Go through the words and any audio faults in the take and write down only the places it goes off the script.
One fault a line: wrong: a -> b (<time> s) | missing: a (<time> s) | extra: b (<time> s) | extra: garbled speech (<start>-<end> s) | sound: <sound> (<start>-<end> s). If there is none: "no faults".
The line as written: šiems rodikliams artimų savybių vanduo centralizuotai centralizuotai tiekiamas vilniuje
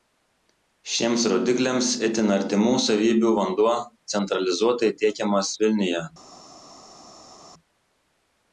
extra: itin (2.1 s)
missing: centralizuotai (4.9 s)